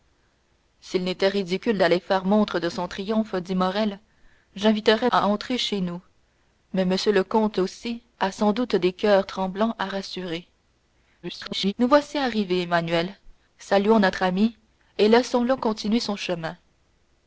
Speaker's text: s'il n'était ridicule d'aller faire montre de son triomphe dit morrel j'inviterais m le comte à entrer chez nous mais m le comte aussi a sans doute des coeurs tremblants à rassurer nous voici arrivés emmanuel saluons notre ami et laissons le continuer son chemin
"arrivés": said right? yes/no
yes